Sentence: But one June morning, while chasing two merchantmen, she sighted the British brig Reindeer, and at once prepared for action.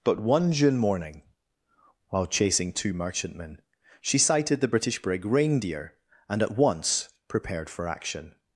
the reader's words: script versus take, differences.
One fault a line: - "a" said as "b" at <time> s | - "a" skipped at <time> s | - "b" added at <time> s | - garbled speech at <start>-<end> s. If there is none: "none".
none